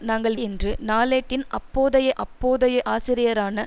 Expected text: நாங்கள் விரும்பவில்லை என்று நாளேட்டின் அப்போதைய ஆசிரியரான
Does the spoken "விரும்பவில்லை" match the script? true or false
false